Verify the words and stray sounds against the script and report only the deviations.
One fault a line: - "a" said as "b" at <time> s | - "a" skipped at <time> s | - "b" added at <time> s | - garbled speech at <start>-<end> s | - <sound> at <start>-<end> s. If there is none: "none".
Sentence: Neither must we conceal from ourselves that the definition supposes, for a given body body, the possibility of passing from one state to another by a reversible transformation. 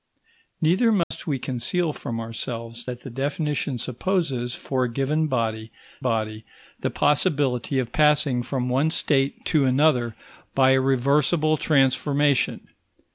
- dropout at 1.0-1.1 s